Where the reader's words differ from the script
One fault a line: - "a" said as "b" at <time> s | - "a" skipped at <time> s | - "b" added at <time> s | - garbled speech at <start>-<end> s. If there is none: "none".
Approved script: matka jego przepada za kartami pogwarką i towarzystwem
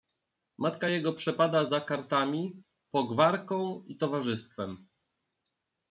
none